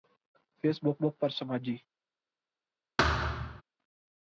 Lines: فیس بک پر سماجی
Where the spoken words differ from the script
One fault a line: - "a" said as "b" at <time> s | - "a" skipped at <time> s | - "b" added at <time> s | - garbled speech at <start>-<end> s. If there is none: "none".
- "بک" added at 1.0 s